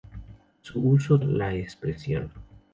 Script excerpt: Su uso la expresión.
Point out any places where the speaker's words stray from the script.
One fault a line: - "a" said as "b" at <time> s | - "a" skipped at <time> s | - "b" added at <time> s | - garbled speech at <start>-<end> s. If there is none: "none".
none